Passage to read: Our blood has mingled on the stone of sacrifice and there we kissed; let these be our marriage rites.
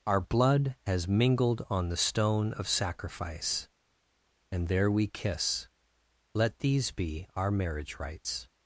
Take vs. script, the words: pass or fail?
fail